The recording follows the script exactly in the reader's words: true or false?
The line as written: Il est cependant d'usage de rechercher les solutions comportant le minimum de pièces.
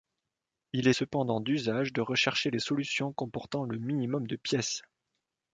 true